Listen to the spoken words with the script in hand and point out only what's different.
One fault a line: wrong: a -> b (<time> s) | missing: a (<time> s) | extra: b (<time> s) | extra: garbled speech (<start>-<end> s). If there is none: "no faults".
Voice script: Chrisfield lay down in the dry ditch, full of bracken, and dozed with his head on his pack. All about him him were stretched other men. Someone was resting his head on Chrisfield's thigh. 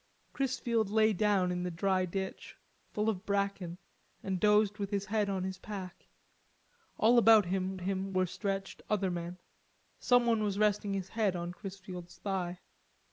no faults